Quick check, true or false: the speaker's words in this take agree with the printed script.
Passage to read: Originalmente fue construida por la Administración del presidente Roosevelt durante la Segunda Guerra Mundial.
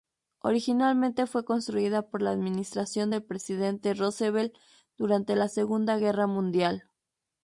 true